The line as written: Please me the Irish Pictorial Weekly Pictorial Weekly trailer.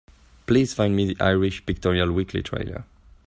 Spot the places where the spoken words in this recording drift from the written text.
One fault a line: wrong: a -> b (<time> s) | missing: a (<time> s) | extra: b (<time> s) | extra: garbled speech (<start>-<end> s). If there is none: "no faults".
extra: find (0.7 s)
missing: Pictorial Weekly (2.4 s)